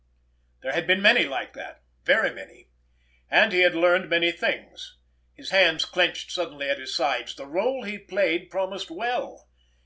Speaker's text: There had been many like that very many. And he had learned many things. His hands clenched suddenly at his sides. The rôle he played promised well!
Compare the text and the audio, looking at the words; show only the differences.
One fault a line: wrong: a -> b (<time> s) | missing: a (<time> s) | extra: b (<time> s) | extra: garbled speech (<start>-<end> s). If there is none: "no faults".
no faults